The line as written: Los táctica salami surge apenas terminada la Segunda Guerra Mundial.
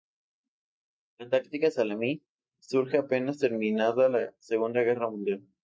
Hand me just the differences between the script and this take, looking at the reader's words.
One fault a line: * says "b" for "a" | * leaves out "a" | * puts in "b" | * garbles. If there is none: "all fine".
* says "La" for "Los"